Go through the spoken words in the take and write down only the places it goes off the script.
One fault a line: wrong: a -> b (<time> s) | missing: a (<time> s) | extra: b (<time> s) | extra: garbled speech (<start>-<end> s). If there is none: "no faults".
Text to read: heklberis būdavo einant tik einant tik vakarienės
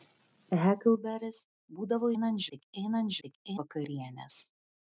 no faults